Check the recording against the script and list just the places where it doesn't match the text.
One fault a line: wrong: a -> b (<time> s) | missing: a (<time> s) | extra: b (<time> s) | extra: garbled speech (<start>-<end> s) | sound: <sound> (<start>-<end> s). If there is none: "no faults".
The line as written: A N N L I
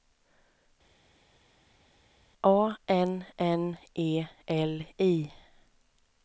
extra: E (3.9 s)